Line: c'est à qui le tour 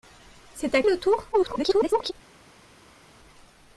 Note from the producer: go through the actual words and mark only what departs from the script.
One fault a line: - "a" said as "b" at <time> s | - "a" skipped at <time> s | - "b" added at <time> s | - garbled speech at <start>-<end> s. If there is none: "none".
- "qui" skipped at 0.8 s
- garbled speech at 1.3-2.1 s